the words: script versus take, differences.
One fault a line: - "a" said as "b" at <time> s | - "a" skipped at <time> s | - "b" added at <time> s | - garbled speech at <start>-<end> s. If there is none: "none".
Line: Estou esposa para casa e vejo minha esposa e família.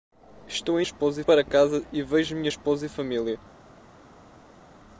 none